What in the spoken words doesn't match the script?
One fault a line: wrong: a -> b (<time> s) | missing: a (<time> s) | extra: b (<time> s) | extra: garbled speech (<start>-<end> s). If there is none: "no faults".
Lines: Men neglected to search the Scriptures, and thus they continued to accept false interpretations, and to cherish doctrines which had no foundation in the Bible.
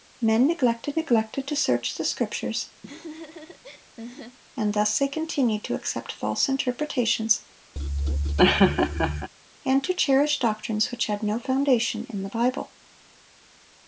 extra: neglected (0.9 s)